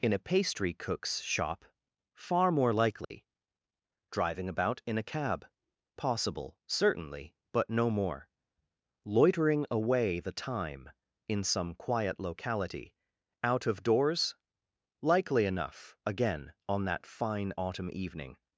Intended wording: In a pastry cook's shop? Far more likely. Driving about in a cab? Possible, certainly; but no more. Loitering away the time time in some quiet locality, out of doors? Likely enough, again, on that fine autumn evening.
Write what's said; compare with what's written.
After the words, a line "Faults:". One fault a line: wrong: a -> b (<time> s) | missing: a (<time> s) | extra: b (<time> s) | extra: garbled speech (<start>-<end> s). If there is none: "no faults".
In a pastry cook's shop? Far more likely. Driving about in a cab? Possible, certainly; but no more. Loitering away the time in some quiet locality, out of doors? Likely enough, again, on that fine autumn evening.
Faults:
missing: time (10.9 s)